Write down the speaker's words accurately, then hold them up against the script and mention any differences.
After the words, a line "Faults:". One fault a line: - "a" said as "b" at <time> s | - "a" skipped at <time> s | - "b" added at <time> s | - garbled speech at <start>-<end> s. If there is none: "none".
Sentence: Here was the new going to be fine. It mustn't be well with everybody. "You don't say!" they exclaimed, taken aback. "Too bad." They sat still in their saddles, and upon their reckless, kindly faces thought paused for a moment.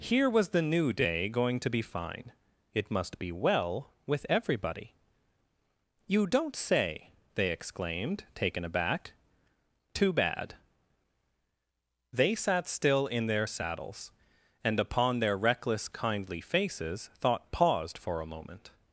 Here was the new day going to be fine. It must be well with everybody. "You don't say!" they exclaimed, taken aback. "Too bad." They sat still in their saddles, and upon their reckless, kindly faces thought paused for a moment.
Faults:
- "day" added at 0.9 s
- "mustn't" said as "must" at 2.9 s